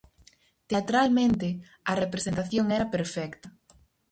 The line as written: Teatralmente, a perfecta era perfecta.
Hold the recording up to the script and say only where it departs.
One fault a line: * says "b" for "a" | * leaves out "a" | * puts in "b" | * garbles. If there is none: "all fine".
* says "representación" for "perfecta"